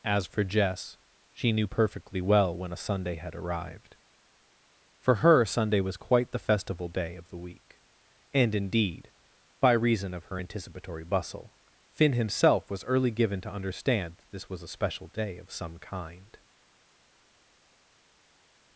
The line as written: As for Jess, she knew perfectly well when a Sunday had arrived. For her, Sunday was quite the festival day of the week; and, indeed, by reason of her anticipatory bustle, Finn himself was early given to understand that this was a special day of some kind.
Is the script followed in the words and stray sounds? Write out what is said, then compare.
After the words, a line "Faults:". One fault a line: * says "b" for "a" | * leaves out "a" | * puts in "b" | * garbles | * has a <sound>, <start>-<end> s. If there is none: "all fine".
As for Jess, she knew perfectly well when a Sunday had arrived. For her, Sunday was quite the festival day of the week; and, indeed, by reason of her anticipatory bustle, Finn himself was early given to understand that this was a special day of some kind.
Faults:
all fine